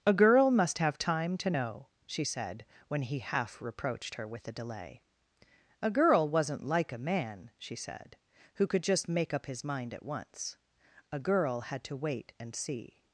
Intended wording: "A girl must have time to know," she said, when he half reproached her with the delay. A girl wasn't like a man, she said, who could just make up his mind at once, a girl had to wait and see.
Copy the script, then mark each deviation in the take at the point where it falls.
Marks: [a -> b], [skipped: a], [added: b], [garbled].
"A girl must have time to know," she said, when he half reproached her with the delay. A girl wasn't like a man, she said, who could just make up his mind at once, a girl had to wait and see.